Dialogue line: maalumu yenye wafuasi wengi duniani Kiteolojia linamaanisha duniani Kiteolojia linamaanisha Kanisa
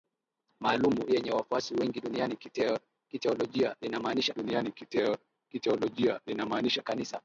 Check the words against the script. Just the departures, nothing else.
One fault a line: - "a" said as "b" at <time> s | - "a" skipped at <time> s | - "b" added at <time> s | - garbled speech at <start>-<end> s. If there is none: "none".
none